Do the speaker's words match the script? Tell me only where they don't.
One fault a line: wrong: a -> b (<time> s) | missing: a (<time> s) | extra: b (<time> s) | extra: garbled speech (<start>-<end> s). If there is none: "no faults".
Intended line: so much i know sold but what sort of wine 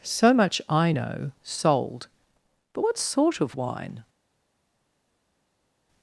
no faults